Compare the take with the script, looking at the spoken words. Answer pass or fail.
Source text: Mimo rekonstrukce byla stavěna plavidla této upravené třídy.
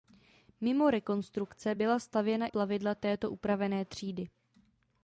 pass